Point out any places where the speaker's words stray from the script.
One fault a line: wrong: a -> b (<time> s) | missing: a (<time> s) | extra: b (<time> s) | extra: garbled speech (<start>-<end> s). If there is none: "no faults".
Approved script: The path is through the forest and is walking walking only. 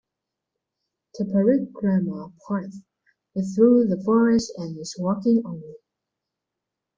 extra: parikrama (1.2 s)
missing: walking (5.4 s)